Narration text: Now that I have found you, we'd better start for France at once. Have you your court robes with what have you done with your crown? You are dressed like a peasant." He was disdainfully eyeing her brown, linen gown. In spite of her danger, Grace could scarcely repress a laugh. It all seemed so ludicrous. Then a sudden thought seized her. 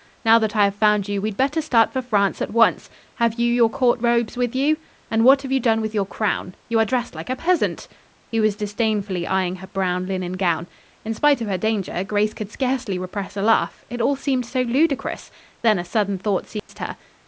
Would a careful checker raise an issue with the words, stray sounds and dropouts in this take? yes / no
yes